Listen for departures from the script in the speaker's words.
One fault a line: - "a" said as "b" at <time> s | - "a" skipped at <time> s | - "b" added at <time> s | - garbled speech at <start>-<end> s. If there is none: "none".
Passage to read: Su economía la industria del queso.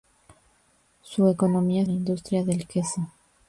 none